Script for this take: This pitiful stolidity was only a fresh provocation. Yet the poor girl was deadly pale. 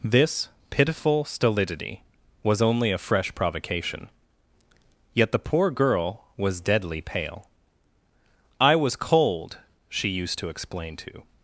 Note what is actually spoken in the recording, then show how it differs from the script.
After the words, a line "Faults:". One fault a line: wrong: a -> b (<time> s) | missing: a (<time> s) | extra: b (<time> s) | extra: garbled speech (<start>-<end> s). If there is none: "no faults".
This pitiful stolidity was only a fresh provocation. Yet the poor girl was deadly pale. "I was cold," she used to explain to
Faults:
extra: I was cold she used to explain to (8.6 s)